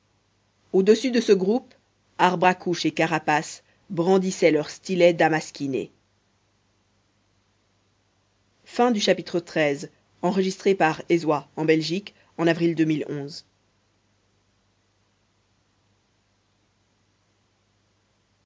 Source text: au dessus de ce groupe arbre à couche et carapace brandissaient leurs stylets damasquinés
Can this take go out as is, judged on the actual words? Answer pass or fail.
pass